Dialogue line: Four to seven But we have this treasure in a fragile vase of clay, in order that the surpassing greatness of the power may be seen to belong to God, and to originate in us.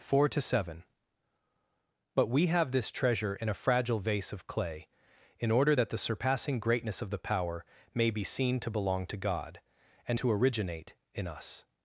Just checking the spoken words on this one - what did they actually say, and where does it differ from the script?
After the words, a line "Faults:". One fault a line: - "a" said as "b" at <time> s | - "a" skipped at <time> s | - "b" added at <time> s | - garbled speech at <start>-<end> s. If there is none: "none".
Four to seven But we have this treasure in a fragile vase of clay, in order that the surpassing greatness of the power may be seen to belong to God, and to originate in us.
Faults:
none